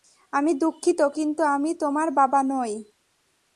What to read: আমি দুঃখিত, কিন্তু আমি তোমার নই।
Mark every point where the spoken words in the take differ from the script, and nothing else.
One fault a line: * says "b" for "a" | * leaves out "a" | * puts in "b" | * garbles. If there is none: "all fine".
* puts in "বাবা"